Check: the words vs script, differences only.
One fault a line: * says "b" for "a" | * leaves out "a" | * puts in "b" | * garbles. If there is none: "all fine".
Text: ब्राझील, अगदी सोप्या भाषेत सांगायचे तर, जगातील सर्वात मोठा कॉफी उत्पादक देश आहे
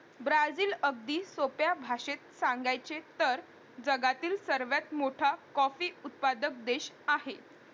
all fine